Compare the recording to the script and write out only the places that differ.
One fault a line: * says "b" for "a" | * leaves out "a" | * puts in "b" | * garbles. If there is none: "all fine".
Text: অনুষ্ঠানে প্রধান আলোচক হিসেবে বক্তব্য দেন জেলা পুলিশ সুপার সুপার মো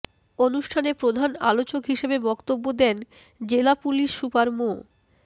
* leaves out "সুপার"